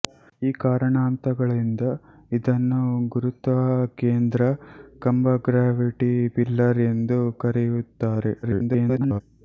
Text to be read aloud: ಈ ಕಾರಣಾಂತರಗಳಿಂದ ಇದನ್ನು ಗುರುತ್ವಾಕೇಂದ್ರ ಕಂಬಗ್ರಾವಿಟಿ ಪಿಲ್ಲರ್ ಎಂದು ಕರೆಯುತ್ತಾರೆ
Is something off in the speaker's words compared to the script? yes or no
yes